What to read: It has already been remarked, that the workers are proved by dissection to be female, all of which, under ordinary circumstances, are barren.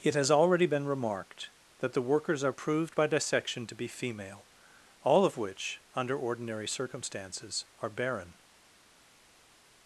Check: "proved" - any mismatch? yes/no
no